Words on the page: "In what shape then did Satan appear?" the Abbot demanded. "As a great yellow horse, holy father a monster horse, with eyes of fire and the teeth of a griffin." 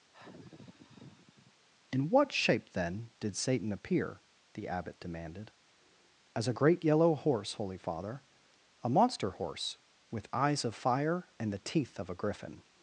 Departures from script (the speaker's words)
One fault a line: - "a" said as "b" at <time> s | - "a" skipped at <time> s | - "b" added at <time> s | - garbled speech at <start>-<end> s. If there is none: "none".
none